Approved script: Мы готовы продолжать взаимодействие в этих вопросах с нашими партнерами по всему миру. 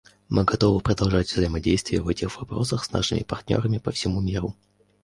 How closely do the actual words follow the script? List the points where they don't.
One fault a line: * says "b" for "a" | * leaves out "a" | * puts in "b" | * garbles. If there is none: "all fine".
all fine